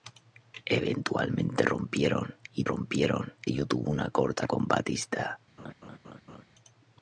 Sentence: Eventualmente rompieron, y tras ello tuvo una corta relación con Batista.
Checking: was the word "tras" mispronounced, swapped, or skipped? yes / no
yes